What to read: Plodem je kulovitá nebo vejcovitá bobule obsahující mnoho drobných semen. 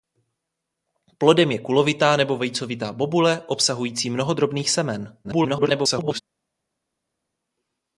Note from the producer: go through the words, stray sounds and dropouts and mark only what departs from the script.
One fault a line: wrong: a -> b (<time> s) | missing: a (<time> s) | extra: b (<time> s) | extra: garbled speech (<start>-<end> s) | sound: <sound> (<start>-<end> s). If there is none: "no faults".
extra: garbled speech (5.2-6.2 s)